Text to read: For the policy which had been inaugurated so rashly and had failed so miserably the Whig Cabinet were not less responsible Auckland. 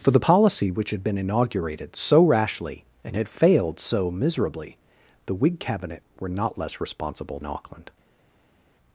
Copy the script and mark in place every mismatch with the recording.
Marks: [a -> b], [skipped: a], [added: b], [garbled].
For the policy which had been inaugurated so rashly and had failed so miserably the Whig Cabinet were not less responsible Auckland.